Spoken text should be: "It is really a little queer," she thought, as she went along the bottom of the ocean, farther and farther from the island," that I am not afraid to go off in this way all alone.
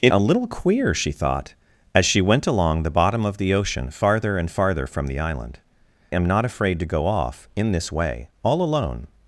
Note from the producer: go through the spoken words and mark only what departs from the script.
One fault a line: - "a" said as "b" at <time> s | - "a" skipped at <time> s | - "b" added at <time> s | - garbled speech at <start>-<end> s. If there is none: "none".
- "is really" skipped at 0.1 s
- "that I" skipped at 5.6 s